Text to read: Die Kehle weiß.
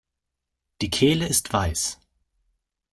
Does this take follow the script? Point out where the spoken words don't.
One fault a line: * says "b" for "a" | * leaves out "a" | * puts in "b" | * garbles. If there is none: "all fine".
* puts in "ist"